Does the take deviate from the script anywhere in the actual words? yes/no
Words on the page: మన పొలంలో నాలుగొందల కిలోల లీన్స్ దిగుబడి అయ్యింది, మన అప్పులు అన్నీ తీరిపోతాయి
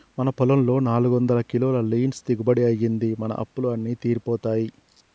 no